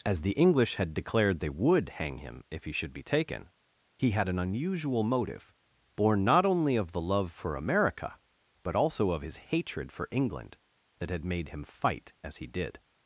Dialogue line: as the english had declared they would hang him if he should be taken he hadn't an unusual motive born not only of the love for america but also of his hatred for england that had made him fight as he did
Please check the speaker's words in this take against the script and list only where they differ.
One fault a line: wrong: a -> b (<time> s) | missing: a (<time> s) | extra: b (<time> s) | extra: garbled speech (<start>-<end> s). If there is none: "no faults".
wrong: hadn't -> had (4.1 s)